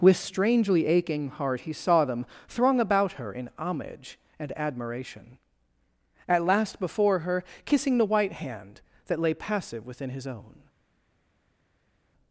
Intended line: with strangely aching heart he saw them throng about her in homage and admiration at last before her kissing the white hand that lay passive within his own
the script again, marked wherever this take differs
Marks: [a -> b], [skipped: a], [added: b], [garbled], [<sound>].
with strangely aching heart he saw them throng about her in homage and admiration at last before her kissing the white hand that lay passive within his own